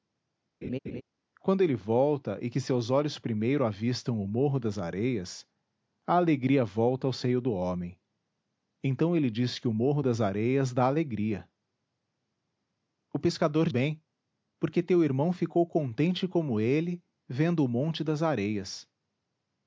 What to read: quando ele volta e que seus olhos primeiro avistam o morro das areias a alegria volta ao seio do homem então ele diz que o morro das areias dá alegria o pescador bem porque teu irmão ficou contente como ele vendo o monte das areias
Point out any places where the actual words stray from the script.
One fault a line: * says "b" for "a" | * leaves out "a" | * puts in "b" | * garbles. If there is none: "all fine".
all fine